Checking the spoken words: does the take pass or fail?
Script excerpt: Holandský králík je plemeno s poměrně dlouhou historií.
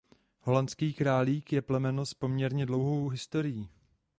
pass